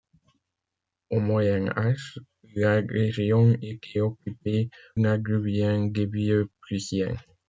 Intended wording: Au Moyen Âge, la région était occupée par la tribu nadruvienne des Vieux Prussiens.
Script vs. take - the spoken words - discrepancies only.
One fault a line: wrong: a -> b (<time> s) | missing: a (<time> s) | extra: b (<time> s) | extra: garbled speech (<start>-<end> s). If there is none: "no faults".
missing: par la tribu (4.7 s)